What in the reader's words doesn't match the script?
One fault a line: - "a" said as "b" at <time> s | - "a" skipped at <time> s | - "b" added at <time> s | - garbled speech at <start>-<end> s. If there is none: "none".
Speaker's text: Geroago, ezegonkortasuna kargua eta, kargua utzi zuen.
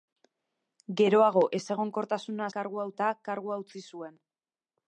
none